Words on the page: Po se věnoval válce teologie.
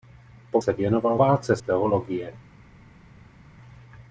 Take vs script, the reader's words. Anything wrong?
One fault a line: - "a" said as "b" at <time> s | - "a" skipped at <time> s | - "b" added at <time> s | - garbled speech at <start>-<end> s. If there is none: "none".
none